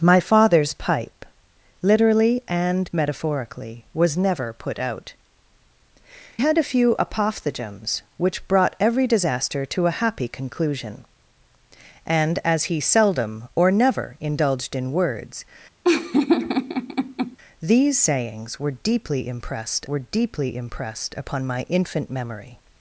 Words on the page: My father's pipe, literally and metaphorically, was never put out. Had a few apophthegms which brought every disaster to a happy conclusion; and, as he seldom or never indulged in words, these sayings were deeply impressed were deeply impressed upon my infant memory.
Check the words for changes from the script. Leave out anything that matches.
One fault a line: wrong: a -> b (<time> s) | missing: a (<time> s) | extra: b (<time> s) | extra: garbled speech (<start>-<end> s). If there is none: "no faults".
no faults